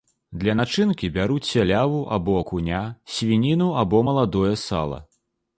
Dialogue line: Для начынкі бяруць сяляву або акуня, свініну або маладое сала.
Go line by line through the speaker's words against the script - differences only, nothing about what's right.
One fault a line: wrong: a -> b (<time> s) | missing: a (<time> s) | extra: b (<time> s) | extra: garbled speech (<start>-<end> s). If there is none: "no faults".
no faults